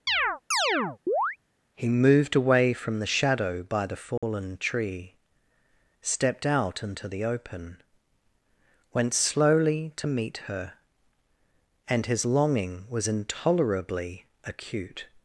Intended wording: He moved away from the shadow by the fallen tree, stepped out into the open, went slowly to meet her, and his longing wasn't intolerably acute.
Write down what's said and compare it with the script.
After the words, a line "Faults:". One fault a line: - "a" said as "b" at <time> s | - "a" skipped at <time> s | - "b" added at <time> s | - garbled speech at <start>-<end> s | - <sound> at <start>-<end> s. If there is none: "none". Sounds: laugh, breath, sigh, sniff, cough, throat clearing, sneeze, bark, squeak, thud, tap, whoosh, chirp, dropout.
He moved away from the shadow by the fallen tree, stepped out into the open, went slowly to meet her, and his longing was intolerably acute.
Faults:
- chirp at 0.1-1.4 s
- dropout at 4.2-4.2 s
- "wasn't" said as "was" at 12.9 s